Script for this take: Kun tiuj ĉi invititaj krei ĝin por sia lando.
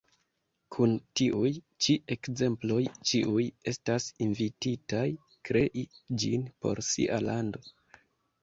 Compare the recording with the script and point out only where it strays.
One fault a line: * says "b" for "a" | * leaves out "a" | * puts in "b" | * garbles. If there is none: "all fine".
* puts in "ekzemploj ĉiuj estas"